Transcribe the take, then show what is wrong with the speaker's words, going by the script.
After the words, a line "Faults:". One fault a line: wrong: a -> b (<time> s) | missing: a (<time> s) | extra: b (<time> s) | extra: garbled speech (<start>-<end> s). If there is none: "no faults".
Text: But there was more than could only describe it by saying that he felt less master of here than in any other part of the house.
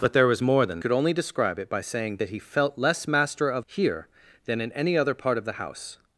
But there was more than could only describe it by saying that he felt less master of here than in any other part of the house.
Faults:
no faults